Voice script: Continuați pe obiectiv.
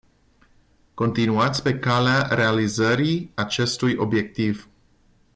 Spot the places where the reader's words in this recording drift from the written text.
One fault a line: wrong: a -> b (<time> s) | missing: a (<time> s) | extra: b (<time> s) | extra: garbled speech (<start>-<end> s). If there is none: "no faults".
extra: calea realizării acestui (1.8 s)